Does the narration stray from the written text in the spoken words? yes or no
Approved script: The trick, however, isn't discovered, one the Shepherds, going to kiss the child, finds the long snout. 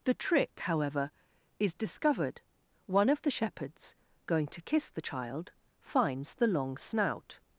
yes